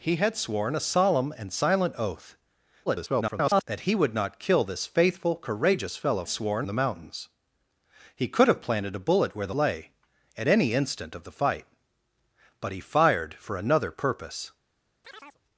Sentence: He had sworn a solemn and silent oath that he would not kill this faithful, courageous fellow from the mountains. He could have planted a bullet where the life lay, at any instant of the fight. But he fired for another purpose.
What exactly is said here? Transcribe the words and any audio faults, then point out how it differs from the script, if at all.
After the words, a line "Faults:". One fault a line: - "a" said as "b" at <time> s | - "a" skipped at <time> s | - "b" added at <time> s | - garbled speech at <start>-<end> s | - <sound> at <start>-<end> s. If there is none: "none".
He had sworn a solemn and silent oath [garbled] that he would not kill this faithful, courageous fellow sworn the mountains. He could have planted a bullet where the lay, at any instant of the fight. But he fired for another purpose.
Faults:
- garbled speech at 2.9-3.6 s
- "from" said as "sworn" at 6.3 s
- "life" skipped at 9.5 s
- chirp at 15.0-15.4 s